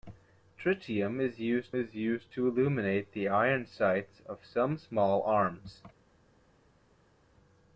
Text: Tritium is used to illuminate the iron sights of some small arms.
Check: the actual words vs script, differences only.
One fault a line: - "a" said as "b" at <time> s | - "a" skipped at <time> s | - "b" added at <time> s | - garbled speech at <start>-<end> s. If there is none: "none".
- "is used" added at 1.8 s